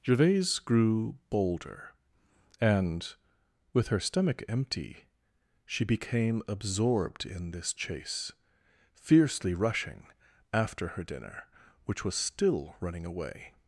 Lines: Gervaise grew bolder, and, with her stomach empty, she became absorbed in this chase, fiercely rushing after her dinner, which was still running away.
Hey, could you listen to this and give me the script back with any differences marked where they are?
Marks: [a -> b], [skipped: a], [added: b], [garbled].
Gervaise grew bolder, and, with her stomach empty, she became absorbed in this chase, fiercely rushing after her dinner, which was still running away.